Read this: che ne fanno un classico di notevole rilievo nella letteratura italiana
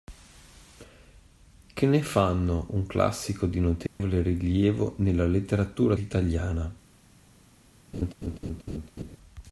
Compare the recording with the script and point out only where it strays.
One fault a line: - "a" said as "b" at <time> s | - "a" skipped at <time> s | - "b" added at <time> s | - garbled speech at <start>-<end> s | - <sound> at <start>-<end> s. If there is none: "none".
- dropout at 3.9-4.0 s
- laugh at 7.9-9.2 s